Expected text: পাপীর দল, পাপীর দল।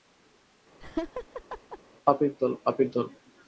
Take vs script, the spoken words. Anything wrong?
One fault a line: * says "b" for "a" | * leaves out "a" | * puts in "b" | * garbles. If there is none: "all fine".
all fine